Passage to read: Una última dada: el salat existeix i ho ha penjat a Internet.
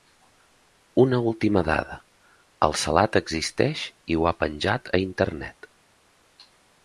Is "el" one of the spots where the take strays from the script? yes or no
no